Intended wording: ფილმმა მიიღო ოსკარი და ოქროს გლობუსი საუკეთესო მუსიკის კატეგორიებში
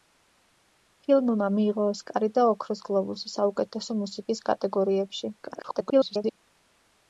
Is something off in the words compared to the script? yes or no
yes